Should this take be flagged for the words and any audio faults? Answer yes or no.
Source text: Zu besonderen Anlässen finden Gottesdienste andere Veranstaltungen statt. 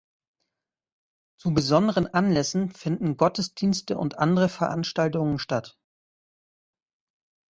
yes